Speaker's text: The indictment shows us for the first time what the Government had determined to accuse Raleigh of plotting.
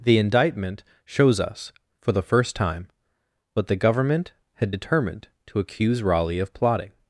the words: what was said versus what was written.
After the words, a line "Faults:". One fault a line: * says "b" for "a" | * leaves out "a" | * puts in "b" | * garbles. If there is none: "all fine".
The indictment shows us for the first time what the Government had determined to accuse Raleigh of plotting.
Faults:
all fine